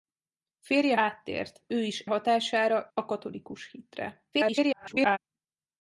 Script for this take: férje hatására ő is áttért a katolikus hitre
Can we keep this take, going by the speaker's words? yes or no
no